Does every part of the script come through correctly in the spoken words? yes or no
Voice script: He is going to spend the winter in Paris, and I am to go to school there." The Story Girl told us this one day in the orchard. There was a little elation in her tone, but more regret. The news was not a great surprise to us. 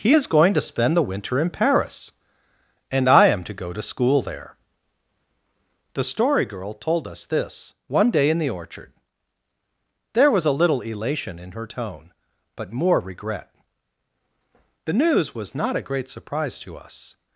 yes